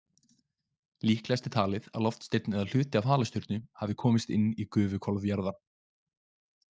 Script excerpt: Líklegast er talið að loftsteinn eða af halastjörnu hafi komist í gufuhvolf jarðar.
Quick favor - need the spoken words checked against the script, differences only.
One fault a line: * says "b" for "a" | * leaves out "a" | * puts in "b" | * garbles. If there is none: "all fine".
* puts in "hluti"
* puts in "inn"